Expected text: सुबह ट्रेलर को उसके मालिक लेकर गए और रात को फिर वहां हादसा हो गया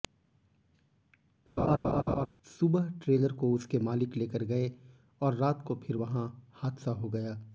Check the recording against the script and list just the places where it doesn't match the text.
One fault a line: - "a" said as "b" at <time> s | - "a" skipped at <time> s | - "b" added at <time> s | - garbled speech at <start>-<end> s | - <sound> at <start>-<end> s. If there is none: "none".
- laugh at 1.6-2.3 s